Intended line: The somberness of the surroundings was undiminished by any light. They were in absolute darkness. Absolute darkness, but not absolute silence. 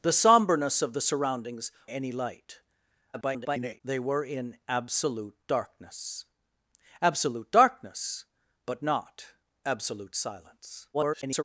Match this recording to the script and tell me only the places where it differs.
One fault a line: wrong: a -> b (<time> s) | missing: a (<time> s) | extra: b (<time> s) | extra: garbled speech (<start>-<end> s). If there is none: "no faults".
missing: was undiminished by (1.7 s)
extra: garbled speech (3.1-3.8 s)
extra: garbled speech (10.9-11.4 s)